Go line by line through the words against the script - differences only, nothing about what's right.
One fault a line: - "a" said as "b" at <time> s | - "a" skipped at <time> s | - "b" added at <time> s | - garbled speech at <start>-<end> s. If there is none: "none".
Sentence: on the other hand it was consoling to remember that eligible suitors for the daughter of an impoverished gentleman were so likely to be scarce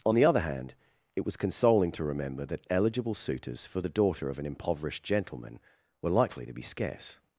- "so" skipped at 6.1 s